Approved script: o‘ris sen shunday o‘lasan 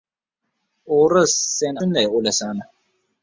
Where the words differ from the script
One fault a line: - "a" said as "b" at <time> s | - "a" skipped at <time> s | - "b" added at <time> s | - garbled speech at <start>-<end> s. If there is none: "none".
none